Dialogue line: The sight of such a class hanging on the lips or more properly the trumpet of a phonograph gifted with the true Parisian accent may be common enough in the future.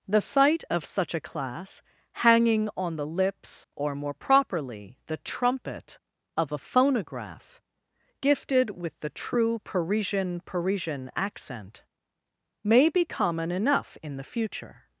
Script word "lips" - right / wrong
right